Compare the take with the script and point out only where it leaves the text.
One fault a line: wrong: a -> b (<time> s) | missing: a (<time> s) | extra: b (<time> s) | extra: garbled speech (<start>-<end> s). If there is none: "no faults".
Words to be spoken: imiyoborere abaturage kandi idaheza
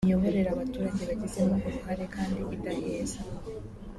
extra: bagizemo uruhare (1.1 s)